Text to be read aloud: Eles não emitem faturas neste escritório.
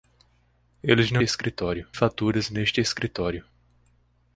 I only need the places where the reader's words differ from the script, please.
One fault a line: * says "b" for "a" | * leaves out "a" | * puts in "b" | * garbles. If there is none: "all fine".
* says "escritório" for "emitem"